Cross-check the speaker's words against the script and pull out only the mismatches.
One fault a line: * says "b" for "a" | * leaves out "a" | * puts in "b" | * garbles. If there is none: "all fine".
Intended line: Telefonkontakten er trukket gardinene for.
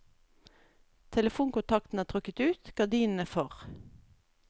* puts in "ut"